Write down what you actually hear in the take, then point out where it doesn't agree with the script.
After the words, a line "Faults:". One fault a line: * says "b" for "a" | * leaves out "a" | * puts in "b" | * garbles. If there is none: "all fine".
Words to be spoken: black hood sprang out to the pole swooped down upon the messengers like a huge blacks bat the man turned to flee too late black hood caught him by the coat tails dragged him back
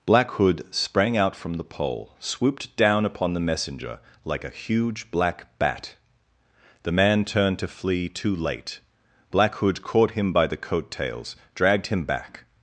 black hood sprang out from the pole swooped down upon the messenger like a huge black bat the man turned to flee too late black hood caught him by the coat tails dragged him back
Faults:
* says "from" for "to"
* says "messenger" for "messengers"
* says "black" for "blacks"